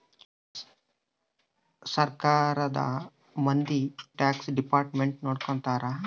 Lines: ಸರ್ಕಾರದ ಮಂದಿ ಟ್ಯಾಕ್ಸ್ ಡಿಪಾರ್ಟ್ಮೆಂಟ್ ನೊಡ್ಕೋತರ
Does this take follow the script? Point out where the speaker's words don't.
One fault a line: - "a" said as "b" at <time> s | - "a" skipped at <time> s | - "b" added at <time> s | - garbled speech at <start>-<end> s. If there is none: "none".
none